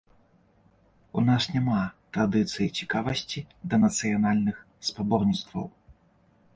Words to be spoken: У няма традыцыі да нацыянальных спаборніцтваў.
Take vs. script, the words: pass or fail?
fail